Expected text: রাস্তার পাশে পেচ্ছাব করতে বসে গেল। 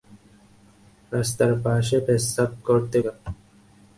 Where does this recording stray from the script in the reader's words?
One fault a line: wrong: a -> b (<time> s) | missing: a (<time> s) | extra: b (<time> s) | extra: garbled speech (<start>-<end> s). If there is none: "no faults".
missing: বসে (3.0 s)